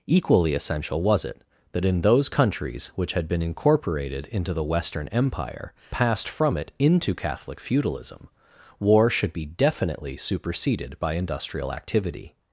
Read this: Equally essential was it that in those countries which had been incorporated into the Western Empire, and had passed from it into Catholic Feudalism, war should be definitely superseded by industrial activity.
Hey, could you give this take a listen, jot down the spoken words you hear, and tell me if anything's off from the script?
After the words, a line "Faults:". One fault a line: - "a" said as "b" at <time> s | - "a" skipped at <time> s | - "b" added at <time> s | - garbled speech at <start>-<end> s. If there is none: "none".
Equally essential was it that in those countries which had been incorporated into the Western Empire, passed from it into Catholic Feudalism, war should be definitely superseded by industrial activity.
Faults:
- "and had" skipped at 5.7 s